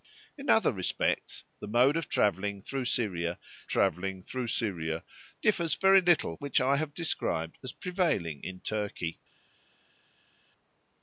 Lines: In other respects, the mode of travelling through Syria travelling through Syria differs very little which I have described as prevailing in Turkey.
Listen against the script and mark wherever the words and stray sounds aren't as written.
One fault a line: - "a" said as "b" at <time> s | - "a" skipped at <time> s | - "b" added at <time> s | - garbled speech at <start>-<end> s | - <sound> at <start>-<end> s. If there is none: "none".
none